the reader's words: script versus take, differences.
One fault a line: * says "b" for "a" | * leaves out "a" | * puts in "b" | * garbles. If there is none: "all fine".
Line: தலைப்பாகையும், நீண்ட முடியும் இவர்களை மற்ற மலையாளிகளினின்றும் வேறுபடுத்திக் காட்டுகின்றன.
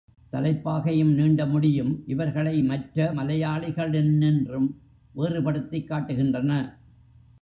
all fine